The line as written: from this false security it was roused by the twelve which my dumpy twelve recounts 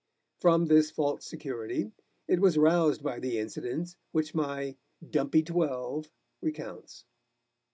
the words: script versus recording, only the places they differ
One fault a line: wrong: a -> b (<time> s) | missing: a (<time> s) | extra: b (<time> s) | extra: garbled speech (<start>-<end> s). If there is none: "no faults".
wrong: twelve -> incident (3.4 s)